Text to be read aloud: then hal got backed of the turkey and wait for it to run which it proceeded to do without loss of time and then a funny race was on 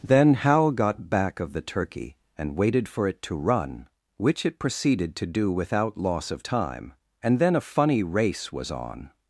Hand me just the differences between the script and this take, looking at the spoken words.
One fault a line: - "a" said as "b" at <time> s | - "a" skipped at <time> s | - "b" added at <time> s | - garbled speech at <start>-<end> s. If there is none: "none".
- "backed" said as "back" at 1.1 s
- "wait" said as "waited" at 2.6 s